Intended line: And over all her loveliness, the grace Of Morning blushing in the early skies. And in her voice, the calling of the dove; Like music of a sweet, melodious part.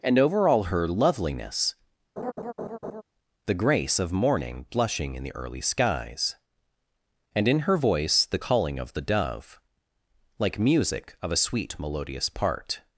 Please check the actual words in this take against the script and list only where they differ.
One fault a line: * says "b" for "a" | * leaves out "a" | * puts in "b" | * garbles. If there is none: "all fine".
all fine